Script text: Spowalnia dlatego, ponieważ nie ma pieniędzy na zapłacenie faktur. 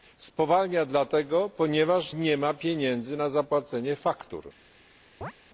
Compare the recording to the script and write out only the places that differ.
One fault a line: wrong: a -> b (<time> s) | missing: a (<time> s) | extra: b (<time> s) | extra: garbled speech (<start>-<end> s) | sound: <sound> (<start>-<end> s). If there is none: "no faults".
sound: chirp (5.2-5.3 s)